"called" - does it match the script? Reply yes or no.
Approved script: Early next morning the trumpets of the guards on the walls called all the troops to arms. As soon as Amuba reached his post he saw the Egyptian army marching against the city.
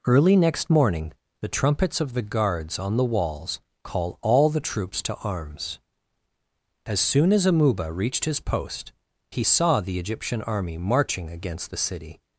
no